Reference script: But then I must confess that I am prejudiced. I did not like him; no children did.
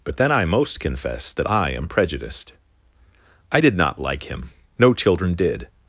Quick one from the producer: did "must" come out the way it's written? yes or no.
no